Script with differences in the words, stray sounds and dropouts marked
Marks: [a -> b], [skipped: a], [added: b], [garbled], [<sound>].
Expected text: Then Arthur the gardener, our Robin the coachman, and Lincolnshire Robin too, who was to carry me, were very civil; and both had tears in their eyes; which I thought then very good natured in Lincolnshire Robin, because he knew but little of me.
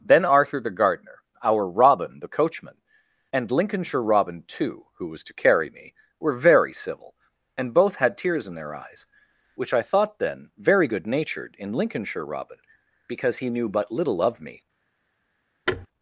Then Arthur the gardener, our Robin the coachman, and Lincolnshire Robin too, who was to carry me, were very civil; and both had tears in their eyes; which I thought then very good natured in Lincolnshire Robin, because he knew but little of me. [thud]